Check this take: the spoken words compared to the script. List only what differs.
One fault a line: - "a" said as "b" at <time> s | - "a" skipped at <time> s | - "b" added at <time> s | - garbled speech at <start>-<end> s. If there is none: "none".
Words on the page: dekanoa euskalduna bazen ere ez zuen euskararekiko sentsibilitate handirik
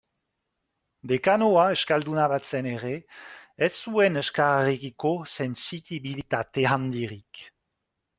none